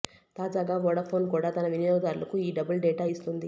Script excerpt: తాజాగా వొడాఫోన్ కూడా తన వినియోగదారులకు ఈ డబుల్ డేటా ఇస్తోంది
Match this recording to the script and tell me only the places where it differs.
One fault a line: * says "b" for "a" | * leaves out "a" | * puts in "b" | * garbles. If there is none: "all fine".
all fine